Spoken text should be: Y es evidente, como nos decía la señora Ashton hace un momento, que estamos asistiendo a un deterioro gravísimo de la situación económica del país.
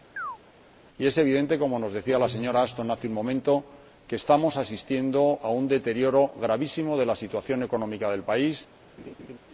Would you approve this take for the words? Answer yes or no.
yes